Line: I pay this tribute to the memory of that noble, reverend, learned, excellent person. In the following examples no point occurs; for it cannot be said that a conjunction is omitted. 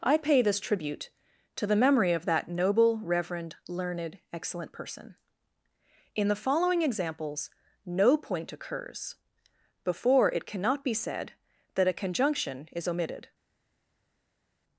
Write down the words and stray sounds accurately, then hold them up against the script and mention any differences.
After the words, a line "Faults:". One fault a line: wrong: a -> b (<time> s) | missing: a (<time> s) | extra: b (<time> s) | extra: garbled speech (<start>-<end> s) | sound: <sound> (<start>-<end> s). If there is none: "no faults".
I pay this tribute to the memory of that noble, reverend, learned, excellent person. In the following examples no point occurs; before it cannot be said that a conjunction is omitted.
Faults:
wrong: for -> before (9.8 s)